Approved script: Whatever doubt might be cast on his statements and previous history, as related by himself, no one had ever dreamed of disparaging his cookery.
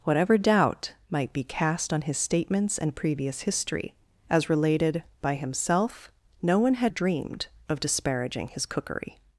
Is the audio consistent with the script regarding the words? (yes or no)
no